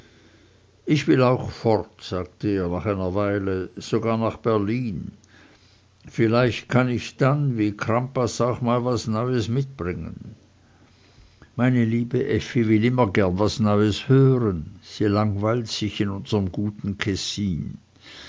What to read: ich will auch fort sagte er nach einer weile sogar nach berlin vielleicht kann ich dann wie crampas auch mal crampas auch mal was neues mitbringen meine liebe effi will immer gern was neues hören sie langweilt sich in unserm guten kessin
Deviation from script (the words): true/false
true